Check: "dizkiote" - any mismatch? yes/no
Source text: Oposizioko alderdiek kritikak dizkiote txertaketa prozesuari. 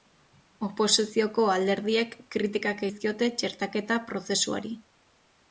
no